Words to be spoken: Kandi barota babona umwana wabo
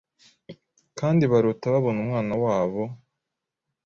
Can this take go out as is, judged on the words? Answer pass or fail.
pass